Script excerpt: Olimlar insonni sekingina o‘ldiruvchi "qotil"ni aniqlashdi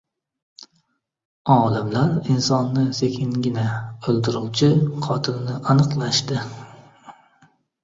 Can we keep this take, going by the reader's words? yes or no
yes